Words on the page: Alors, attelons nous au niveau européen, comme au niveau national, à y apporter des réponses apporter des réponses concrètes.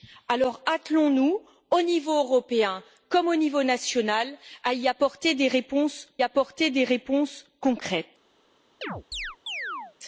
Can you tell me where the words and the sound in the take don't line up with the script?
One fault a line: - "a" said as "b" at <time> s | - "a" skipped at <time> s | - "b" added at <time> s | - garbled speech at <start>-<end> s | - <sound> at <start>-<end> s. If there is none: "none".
- chirp at 8.8-9.9 s